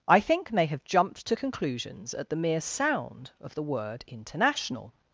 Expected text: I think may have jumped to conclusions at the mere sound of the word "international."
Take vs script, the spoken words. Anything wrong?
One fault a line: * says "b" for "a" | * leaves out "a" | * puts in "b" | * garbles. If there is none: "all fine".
all fine